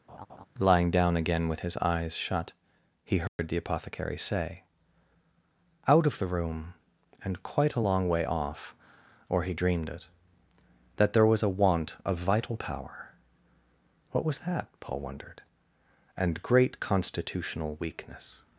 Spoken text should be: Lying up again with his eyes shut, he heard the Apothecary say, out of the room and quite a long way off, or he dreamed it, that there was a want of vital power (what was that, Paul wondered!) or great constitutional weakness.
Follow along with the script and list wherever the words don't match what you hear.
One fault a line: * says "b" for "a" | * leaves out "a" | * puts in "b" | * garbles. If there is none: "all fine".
* says "down" for "up"
* says "and" for "or"